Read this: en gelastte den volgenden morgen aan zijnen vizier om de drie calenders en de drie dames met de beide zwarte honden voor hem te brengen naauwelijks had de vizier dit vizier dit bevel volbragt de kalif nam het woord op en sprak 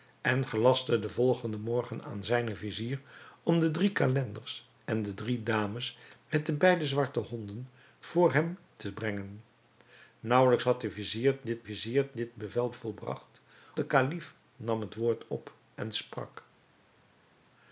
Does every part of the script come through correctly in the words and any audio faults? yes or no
yes